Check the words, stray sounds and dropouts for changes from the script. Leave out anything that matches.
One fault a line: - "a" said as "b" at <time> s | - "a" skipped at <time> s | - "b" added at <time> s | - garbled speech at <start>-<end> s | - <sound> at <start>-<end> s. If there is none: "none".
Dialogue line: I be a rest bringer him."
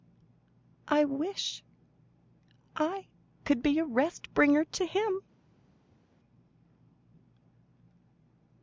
- "wish I could" added at 1.1 s
- "to" added at 4.7 s